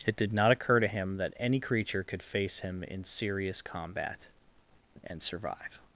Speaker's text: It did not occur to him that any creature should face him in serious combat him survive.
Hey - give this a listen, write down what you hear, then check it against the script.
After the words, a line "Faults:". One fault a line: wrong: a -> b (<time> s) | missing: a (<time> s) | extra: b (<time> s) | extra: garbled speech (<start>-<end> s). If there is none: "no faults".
It did not occur to him that any creature could face him in serious combat and survive.
Faults:
wrong: should -> could (2.0 s)
wrong: him -> and (5.0 s)